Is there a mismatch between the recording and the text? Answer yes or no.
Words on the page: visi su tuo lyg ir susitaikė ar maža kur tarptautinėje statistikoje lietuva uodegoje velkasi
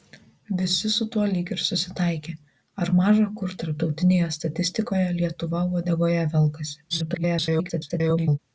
yes